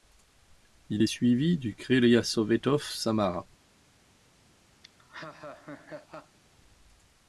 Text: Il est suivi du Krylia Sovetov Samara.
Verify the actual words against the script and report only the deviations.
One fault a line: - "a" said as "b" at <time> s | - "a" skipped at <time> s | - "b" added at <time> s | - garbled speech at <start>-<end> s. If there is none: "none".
none